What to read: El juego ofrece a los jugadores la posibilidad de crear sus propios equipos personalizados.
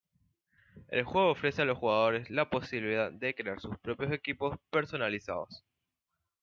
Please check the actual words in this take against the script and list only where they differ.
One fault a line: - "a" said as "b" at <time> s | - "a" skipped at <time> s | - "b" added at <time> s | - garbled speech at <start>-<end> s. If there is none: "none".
none